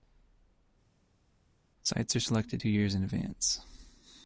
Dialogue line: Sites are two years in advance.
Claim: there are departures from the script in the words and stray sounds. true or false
true